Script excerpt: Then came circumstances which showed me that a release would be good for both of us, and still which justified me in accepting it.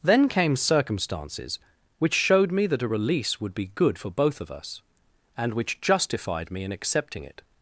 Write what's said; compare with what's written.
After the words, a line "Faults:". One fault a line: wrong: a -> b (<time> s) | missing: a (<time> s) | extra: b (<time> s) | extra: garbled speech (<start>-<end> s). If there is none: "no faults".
Then came circumstances which showed me that a release would be good for both of us, and which justified me in accepting it.
Faults:
missing: still (5.5 s)